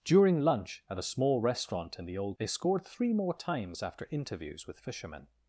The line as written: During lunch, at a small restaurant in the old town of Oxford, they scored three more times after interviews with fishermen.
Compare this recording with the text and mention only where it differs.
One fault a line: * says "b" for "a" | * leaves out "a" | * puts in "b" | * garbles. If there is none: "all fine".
* leaves out "town of Oxford"